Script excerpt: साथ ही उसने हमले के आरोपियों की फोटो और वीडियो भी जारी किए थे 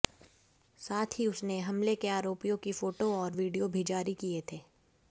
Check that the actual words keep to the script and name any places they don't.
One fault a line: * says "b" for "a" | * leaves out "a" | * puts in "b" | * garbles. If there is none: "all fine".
all fine